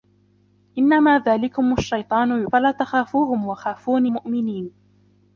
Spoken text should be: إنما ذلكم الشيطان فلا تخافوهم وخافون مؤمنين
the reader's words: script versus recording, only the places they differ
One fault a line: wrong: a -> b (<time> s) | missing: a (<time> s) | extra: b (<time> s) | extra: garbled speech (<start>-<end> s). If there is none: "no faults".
no faults